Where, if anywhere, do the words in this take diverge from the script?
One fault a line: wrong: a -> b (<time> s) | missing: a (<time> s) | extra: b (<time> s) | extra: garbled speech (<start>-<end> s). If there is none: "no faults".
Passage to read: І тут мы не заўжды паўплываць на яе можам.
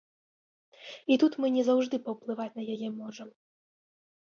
no faults